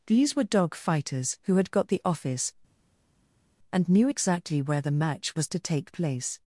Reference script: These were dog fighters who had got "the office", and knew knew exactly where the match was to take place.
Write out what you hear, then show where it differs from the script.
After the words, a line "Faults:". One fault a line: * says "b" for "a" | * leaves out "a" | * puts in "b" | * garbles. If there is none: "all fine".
These were dog fighters who had got "the office", and knew exactly where the match was to take place.
Faults:
* leaves out "knew"